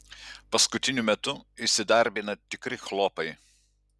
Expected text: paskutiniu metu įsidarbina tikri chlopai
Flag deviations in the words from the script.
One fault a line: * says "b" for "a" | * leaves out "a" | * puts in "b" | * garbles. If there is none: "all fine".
all fine